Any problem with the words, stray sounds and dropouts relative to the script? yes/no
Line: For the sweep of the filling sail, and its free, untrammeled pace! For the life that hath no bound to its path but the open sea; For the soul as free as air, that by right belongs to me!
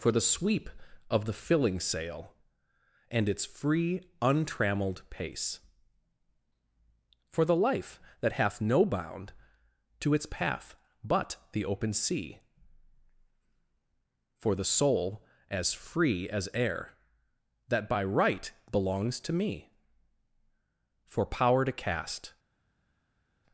yes